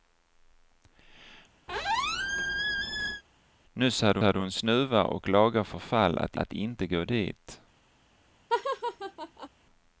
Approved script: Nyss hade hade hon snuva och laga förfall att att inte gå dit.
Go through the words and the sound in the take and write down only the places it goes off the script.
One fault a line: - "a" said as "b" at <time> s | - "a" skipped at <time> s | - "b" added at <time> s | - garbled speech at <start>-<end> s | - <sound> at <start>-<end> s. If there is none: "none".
- squeak at 1.7-3.2 s
- laugh at 8.5-9.5 s